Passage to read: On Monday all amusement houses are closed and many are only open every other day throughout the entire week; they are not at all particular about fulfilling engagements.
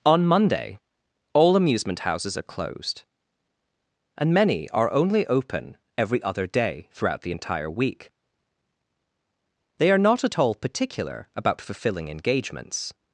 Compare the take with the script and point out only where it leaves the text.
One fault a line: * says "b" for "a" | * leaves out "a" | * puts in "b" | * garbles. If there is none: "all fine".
all fine